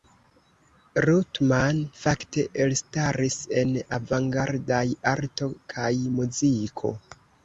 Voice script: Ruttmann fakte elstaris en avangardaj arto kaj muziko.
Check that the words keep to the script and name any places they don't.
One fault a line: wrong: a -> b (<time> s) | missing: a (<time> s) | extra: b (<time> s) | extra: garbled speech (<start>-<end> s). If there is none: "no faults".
no faults